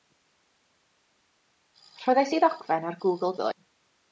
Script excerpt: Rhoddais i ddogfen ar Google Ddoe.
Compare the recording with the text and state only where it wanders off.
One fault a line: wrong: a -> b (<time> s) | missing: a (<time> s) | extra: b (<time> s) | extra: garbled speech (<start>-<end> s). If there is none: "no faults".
no faults